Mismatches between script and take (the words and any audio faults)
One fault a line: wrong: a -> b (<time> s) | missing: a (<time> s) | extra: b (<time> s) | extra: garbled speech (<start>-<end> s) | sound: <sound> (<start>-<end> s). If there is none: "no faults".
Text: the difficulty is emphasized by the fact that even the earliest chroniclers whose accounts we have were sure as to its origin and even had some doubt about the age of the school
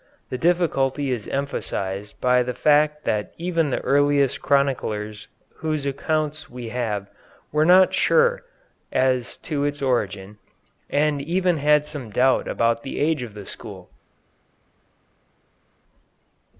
extra: not (7.7 s)